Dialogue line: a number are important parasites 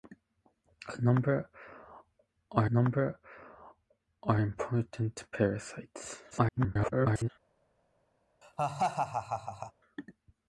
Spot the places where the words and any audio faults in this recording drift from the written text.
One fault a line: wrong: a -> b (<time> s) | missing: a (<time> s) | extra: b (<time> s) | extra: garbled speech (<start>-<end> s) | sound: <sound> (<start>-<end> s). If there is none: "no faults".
extra: number are (2.7 s)
extra: garbled speech (6.3-7.3 s)
sound: laugh (8.4-9.7 s)